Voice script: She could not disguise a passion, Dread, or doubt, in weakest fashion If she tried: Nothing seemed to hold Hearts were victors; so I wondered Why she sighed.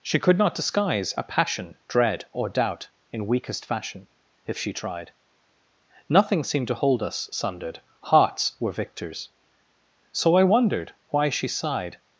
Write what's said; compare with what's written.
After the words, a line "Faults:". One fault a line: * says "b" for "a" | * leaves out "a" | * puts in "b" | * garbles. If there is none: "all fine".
She could not disguise a passion, Dread, or doubt, in weakest fashion If she tried: Nothing seemed to hold us sundered, Hearts were victors; so I wondered Why she sighed.
Faults:
* puts in "us sundered"